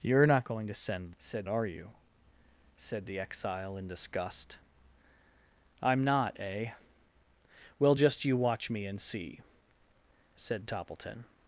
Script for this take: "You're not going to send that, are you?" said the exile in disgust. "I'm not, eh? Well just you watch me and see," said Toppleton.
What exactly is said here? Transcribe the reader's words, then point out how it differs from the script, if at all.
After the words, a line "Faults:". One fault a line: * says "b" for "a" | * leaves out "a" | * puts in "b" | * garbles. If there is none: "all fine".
"You're not going to send said, are you?" said the exile in disgust. "I'm not, eh? Well just you watch me and see," said Toppleton.
Faults:
* says "said" for "that"